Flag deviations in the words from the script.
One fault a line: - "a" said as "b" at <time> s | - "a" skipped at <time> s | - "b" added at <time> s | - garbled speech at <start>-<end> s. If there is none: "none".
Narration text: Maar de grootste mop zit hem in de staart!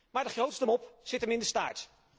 none